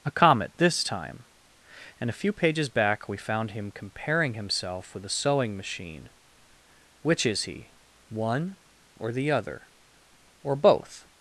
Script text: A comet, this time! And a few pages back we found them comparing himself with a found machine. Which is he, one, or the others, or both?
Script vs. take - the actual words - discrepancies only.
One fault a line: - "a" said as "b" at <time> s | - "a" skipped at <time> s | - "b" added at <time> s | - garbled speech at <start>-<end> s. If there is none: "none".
- "them" said as "him" at 3.5 s
- "found" said as "sewing" at 5.1 s
- "others" said as "other" at 9.3 s